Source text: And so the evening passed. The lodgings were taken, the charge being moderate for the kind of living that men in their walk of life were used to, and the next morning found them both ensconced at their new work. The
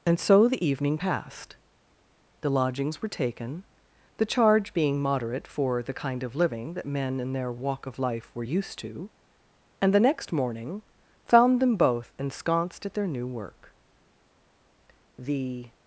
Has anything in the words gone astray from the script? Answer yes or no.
no